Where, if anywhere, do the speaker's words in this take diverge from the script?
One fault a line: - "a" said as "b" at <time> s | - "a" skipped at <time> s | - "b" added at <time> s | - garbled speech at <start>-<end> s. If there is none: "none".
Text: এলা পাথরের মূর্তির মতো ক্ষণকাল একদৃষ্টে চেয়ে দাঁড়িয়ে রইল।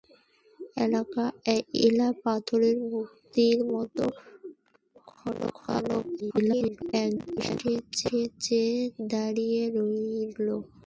- garbled speech at 6.2-6.9 s